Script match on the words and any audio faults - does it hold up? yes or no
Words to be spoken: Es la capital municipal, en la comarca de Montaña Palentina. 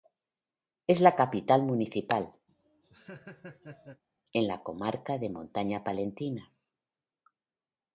no